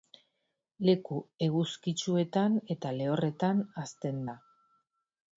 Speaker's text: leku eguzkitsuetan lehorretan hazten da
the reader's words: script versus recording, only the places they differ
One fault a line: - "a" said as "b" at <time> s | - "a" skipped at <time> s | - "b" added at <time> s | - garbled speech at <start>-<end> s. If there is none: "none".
- "eta" added at 2.7 s